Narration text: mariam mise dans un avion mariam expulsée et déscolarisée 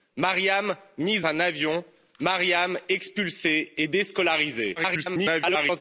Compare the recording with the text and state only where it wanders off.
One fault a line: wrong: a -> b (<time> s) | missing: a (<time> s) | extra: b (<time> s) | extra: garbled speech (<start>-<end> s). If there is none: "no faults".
missing: dans (1.2 s)
extra: garbled speech (4.8-5.8 s)